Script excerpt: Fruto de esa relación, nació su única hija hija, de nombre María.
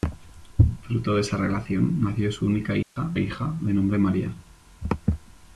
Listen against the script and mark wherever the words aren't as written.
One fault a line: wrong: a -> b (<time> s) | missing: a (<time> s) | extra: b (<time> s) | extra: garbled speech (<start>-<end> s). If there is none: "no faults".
no faults